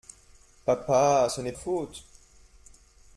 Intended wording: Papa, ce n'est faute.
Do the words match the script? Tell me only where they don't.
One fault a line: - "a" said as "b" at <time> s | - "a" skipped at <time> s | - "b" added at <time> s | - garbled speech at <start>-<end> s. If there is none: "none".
none